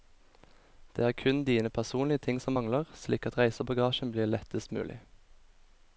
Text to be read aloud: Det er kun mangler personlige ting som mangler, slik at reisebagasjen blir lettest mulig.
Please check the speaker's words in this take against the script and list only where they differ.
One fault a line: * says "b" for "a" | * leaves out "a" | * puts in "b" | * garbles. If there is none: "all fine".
* says "dine" for "mangler"